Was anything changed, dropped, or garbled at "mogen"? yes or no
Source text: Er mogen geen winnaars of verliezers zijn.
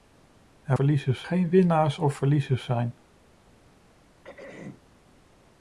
yes